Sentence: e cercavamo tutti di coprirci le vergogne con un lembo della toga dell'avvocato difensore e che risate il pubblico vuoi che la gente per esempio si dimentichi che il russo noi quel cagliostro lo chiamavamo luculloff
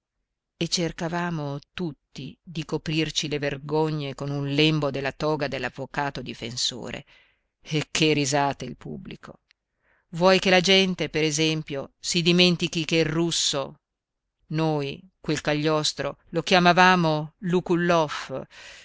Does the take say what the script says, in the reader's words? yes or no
yes